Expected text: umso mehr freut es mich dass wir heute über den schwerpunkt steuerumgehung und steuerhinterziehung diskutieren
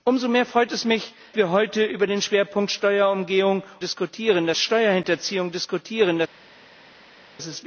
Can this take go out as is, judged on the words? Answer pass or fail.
fail